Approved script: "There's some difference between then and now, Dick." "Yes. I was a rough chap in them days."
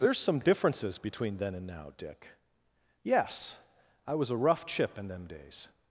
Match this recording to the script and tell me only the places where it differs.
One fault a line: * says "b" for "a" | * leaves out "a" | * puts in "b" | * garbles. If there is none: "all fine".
* says "differences" for "difference"
* says "chip" for "chap"